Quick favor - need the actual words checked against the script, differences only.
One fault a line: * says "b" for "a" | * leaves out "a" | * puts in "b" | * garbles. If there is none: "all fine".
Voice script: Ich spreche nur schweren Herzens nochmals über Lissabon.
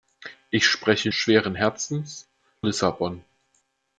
* leaves out "nur"
* leaves out "nochmals über"